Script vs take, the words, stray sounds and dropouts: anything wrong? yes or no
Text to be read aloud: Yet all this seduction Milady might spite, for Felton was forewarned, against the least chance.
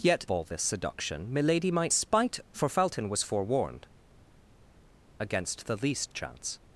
no